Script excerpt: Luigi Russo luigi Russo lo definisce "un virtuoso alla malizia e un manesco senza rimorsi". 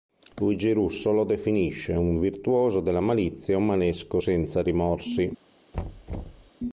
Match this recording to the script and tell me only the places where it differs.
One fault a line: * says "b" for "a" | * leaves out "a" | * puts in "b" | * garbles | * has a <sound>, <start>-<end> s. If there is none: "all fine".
* leaves out "luigi Russo"
* says "della" for "alla"
* has a thud, 5.7-6.5 s